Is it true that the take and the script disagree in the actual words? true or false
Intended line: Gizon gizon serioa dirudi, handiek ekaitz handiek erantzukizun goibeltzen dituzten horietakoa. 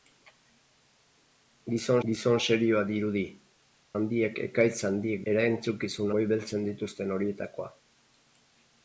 false